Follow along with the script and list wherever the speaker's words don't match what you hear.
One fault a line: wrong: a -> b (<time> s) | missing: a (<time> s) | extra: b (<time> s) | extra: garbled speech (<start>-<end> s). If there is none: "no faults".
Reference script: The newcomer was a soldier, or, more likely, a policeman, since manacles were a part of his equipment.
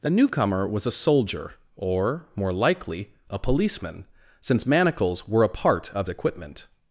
missing: his (6.1 s)